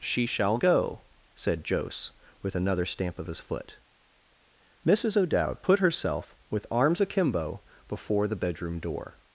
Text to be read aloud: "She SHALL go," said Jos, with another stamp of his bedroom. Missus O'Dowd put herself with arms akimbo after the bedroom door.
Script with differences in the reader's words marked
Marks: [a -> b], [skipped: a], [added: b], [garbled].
"She SHALL go," said Jos, with another stamp of his [bedroom. -> foot] Missus O'Dowd put herself with arms akimbo [after -> before] the bedroom door.